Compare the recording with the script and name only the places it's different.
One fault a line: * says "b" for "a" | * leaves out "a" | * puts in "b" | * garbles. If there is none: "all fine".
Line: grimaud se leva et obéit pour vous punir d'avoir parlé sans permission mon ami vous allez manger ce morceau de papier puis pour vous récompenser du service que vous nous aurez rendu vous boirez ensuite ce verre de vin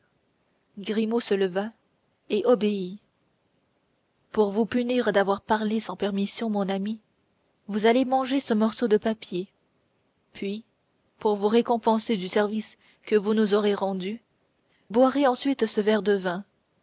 * leaves out "vous"